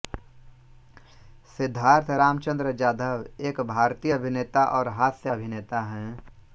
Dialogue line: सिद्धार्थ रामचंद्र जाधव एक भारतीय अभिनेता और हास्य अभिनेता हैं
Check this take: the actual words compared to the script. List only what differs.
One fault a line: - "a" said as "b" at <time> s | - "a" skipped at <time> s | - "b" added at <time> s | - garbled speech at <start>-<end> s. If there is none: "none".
none